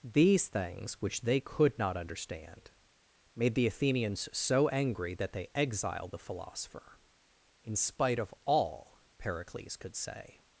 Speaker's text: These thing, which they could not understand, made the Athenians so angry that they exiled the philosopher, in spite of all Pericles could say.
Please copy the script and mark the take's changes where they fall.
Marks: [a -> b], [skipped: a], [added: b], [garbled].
These [thing, -> things] which they could not understand, made the Athenians so angry that they exiled the philosopher, in spite of all Pericles could say.